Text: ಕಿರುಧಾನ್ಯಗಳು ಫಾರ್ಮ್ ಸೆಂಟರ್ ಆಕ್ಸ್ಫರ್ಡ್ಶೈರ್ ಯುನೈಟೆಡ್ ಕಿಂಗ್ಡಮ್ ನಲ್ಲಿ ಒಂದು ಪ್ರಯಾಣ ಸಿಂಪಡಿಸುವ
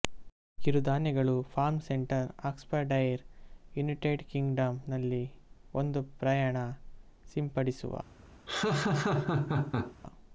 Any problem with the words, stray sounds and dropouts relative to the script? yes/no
yes